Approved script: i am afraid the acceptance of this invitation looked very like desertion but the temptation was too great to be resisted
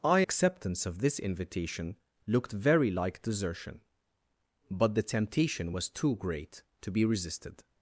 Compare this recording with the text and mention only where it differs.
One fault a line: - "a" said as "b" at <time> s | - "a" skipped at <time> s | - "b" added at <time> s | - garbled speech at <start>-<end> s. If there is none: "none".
- "am afraid the" skipped at 0.2 s